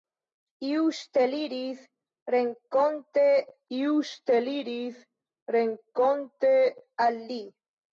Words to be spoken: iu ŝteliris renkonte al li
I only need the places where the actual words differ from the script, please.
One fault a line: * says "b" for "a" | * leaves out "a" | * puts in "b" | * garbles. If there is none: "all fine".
* puts in "iu ŝteliris renkonte"